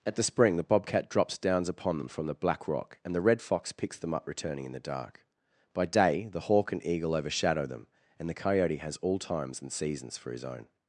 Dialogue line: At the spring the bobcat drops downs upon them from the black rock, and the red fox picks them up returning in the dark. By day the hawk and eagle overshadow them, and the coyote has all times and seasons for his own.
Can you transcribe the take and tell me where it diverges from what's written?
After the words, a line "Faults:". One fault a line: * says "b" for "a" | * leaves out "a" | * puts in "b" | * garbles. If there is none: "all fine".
At the spring the bobcat drops downs upon them from the black rock, and the red fox picks them up returning in the dark. By day the hawk and eagle overshadow them, and the coyote has all times and seasons for his own.
Faults:
all fine